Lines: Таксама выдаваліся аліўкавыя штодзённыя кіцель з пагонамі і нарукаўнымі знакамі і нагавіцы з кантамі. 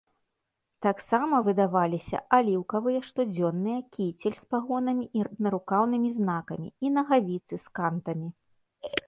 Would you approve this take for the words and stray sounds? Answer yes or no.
yes